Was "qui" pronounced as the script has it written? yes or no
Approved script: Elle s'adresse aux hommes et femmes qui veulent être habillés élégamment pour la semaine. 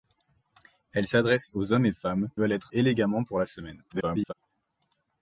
no